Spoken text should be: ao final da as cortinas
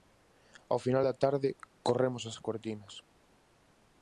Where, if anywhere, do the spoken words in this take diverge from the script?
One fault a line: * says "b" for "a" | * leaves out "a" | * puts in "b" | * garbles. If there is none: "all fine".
* puts in "tarde corremos"